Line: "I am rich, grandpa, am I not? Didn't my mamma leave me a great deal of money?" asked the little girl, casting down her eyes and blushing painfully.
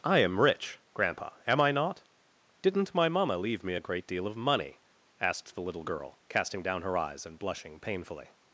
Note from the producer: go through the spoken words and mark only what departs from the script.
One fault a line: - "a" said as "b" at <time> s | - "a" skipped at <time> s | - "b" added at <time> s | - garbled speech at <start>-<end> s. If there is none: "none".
none